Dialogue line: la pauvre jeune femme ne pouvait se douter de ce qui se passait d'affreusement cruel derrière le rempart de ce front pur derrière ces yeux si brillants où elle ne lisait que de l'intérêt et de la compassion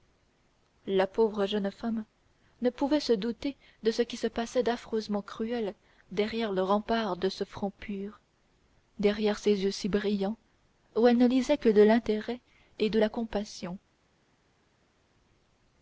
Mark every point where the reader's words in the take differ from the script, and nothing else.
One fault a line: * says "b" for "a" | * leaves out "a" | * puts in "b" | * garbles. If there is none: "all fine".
all fine